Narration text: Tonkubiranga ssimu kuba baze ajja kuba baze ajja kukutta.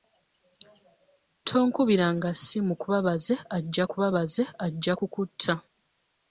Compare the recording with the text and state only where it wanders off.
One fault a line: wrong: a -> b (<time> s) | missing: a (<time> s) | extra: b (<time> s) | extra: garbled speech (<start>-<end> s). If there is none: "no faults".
no faults